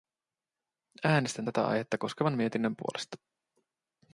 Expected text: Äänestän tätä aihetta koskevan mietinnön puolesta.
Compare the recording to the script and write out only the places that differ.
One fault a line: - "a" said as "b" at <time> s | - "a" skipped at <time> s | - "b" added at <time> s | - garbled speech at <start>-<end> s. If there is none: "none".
none